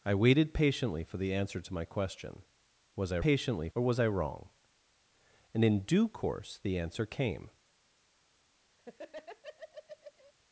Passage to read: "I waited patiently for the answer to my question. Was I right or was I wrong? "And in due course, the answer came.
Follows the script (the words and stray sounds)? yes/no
no